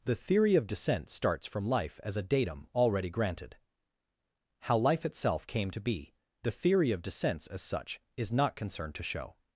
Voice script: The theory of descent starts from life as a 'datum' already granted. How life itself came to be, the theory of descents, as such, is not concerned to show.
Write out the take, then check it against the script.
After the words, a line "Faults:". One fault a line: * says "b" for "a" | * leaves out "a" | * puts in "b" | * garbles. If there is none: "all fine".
The theory of descent starts from life as a 'datum' already granted. How life itself came to be, the theory of descents, as such, is not concerned to show.
Faults:
all fine